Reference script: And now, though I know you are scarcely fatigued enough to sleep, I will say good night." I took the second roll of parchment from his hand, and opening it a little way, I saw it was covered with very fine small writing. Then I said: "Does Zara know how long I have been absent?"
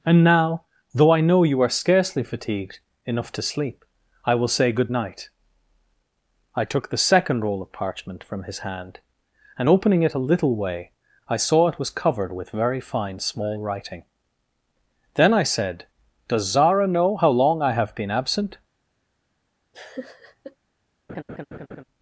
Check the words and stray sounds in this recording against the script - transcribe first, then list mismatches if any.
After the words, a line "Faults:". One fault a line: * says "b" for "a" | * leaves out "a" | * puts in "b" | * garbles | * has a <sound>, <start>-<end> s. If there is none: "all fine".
And now, though I know you are scarcely fatigued enough to sleep, I will say good night." I took the second roll of parchment from his hand, and opening it a little way, I saw it was covered with very fine small writing. Then I said: "Does Zara know how long I have been absent?"
Faults:
* has a laugh, 19.7-20.6 s
* has a laugh, 21.1-21.8 s